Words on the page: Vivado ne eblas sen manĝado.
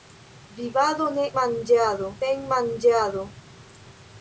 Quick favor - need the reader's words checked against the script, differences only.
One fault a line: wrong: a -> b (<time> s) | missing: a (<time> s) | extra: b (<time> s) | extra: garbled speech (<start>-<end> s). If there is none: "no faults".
wrong: eblas -> manĝado (1.4 s)